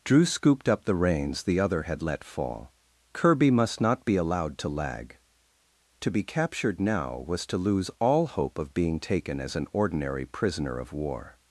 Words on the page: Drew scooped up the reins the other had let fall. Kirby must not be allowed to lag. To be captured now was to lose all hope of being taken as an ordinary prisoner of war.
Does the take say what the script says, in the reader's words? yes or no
yes